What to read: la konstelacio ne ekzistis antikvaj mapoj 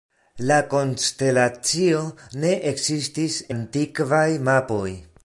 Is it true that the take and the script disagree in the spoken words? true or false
false